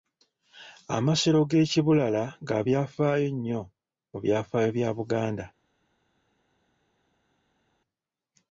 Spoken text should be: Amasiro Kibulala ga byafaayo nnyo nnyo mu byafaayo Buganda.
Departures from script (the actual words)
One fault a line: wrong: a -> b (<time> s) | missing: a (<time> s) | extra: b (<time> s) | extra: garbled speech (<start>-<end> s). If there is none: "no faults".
extra: g'e (1.5 s)
missing: nnyo (3.6 s)
extra: bya (4.8 s)